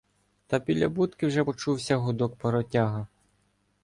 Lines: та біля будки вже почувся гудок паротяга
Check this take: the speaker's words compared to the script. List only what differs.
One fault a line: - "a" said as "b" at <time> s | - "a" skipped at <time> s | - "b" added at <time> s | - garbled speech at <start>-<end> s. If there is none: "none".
none